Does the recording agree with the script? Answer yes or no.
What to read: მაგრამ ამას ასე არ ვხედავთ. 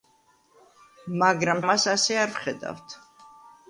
yes